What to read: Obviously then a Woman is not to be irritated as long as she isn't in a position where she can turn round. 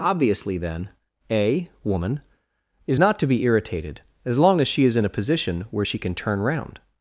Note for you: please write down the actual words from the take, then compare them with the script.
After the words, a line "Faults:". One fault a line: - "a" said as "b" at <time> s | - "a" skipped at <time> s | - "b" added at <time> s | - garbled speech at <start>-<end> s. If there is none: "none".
Obviously then a Woman is not to be irritated as long as she is in a position where she can turn round.
Faults:
- "isn't" said as "is" at 4.8 s